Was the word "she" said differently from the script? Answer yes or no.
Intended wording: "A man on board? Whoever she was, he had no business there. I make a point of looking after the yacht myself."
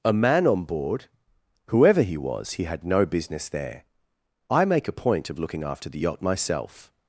yes